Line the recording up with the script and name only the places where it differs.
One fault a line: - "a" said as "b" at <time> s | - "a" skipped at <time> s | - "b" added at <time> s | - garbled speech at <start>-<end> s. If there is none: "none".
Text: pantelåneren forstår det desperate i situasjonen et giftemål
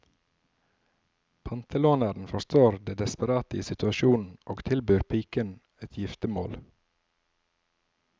- "og tilbyr piken" added at 4.4 s